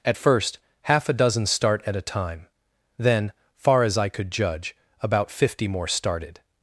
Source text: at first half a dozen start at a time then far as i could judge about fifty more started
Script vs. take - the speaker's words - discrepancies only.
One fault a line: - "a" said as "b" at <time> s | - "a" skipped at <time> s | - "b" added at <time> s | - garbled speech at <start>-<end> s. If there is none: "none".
none